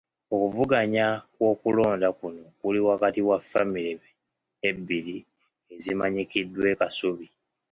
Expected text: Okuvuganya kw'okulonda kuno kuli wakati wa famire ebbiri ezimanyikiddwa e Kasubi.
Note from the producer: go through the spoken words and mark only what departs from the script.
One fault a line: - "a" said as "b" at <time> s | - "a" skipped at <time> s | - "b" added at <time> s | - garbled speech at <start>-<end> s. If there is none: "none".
none